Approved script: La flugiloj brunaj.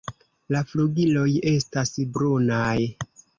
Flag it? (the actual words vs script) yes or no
yes